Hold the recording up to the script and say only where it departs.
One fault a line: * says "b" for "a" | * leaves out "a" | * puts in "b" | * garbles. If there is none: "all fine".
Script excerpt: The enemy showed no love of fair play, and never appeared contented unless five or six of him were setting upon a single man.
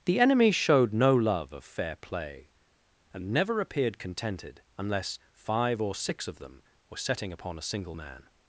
* says "them" for "him"